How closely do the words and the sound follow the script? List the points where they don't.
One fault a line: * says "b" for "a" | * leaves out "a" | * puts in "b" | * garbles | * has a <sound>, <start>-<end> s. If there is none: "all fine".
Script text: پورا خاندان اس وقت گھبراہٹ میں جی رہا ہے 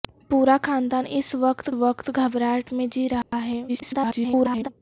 * puts in "وقت"
* has a dropout, 3.2-3.3 s
* garbles